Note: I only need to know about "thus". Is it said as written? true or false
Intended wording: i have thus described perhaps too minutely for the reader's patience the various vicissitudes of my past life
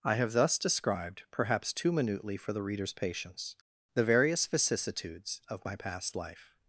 true